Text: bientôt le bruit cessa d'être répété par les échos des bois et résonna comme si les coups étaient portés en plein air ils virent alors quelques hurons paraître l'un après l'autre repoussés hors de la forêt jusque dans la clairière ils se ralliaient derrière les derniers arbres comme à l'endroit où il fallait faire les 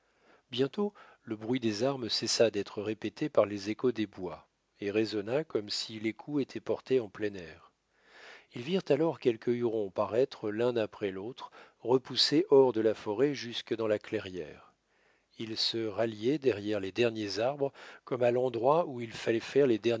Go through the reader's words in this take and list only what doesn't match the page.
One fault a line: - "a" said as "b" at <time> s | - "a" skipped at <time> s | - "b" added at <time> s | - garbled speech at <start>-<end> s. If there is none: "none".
- "des armes" added at 1.6 s